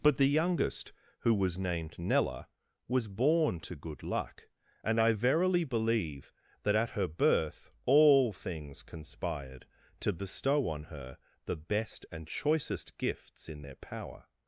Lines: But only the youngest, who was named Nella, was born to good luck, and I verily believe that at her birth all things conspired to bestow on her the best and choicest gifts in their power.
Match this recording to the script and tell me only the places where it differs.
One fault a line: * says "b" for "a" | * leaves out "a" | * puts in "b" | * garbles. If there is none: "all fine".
* leaves out "only"